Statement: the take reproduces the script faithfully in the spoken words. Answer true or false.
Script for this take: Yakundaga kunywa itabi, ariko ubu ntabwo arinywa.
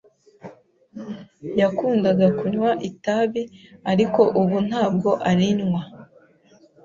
true